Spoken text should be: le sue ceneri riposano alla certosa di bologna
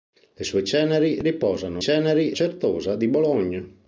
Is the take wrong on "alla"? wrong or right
wrong